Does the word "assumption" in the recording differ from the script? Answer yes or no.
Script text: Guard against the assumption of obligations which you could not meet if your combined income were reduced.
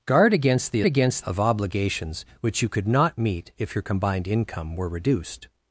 yes